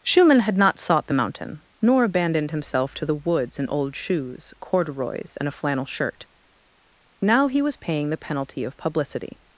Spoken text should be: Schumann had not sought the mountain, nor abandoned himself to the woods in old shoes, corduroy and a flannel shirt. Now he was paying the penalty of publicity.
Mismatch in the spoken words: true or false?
true